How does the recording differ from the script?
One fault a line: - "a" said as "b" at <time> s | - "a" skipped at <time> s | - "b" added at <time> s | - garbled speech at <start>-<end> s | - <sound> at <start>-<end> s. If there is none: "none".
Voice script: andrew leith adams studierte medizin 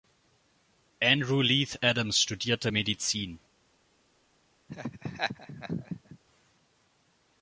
- laugh at 4.7-6.2 s